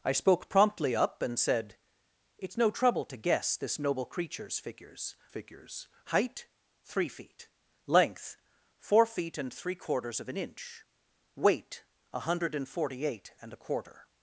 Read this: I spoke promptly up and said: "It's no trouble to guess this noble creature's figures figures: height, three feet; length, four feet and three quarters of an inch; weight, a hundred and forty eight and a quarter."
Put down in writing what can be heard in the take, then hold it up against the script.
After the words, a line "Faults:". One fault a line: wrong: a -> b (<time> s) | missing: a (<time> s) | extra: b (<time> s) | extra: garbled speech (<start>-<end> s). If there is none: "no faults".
I spoke promptly up and said: "It's no trouble to guess this noble creature's figures figures: height, three feet; length, four feet and three quarters of an inch; weight, a hundred and forty eight and a quarter."
Faults:
no faults